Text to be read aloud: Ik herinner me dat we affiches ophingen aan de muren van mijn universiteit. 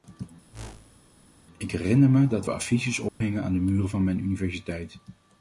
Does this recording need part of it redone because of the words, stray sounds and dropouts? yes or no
yes